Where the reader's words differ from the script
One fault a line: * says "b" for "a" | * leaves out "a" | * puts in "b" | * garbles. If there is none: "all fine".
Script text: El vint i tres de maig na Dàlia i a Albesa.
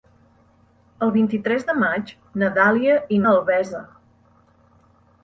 all fine